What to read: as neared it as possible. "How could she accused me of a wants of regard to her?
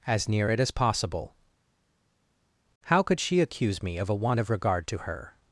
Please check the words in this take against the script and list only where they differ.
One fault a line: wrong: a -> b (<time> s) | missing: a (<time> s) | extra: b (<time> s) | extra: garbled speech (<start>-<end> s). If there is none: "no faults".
wrong: neared -> near (0.3 s)
wrong: accused -> accuse (3.4 s)
wrong: wants -> want (4.2 s)